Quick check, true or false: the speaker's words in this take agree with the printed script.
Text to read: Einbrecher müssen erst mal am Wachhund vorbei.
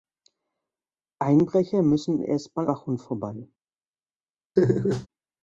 false